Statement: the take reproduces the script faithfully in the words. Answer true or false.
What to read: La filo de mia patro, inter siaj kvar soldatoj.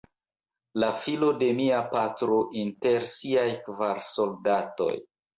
true